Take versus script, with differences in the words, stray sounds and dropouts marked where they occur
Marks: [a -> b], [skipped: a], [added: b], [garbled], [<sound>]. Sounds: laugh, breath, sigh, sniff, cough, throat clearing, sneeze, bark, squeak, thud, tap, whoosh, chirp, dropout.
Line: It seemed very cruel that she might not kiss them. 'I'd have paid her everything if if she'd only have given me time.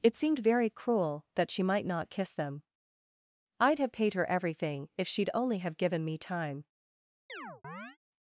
It seemed very cruel that she might not kiss them. 'I'd have paid her everything if [skipped: if] she'd only have given me time. [chirp]